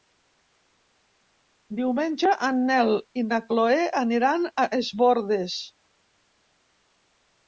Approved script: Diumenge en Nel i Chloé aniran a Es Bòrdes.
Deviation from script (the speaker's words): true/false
true